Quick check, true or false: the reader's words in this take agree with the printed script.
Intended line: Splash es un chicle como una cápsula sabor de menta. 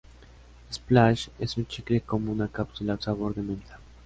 true